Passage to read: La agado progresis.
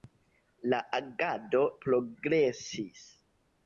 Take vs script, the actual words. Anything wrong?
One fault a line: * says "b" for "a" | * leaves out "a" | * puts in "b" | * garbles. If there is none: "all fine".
all fine